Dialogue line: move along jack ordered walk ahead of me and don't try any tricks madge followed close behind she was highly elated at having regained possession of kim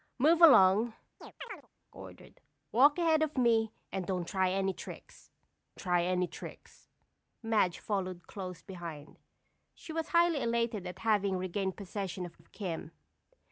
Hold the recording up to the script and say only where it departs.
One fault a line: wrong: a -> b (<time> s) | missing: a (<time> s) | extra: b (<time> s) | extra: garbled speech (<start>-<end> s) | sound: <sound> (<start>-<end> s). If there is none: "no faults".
missing: jack (0.9 s)
sound: chirp (1.2-1.7 s)
extra: try any tricks (5.8 s)
extra: of (12.4 s)